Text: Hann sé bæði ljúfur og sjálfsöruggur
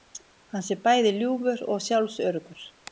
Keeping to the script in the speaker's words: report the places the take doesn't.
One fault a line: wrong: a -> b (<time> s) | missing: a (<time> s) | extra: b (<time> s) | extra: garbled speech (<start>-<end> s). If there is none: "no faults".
no faults